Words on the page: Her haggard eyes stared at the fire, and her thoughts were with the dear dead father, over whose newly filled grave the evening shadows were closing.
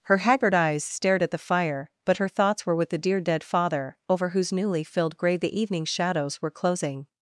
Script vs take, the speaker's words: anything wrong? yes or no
yes